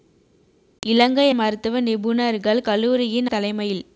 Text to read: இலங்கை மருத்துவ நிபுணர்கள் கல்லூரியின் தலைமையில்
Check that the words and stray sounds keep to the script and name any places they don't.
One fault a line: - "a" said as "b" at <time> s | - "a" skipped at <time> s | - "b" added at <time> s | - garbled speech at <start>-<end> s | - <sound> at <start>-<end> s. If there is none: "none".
none